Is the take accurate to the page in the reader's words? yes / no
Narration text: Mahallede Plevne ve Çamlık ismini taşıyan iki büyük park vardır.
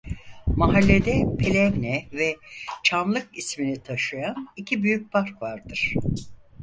yes